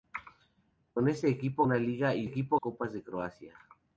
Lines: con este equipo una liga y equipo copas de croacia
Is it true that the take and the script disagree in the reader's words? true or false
false